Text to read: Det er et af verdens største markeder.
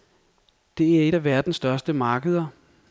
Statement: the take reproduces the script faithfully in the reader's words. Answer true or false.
true